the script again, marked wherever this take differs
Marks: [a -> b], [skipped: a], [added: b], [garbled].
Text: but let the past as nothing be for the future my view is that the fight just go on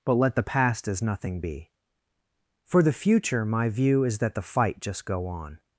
but let the past as nothing be for the future my view is that the fight just go on